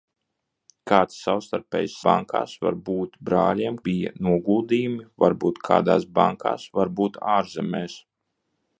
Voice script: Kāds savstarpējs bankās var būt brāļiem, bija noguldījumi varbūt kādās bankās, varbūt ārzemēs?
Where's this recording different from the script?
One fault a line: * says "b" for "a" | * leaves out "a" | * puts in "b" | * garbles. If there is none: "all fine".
all fine